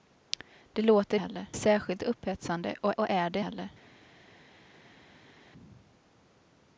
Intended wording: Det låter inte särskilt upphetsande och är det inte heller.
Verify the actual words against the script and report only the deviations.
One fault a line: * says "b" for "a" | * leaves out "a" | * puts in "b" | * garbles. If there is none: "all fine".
* says "heller" for "inte"
* puts in "och"
* leaves out "inte"